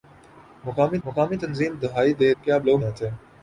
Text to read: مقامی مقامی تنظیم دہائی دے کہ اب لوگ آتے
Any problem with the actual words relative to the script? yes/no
no